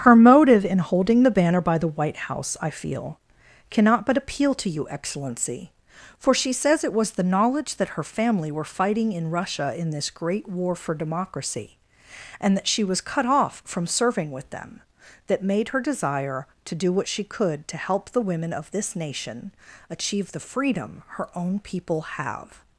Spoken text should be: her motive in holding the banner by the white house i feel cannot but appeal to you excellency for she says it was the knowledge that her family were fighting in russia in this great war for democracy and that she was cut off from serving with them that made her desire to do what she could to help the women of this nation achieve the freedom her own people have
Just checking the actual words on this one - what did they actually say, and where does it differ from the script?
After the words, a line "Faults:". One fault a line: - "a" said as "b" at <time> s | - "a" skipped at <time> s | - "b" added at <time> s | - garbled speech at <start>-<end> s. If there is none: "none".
her motive in holding the banner by the white house i feel cannot but appeal to you excellency for she says it was the knowledge that her family were fighting in russia in this great war for democracy and that she was cut off from serving with them that made her desire to do what she could to help the women of this nation achieve the freedom her own people have
Faults:
none